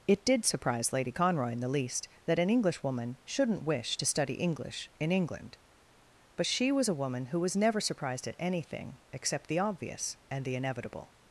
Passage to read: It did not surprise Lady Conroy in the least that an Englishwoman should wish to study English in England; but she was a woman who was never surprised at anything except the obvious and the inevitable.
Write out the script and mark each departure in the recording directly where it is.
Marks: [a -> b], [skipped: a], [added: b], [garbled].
It did [skipped: not] surprise Lady Conroy in the least that an Englishwoman [should -> shouldn't] wish to study English in England; but she was a woman who was never surprised at anything except the obvious and the inevitable.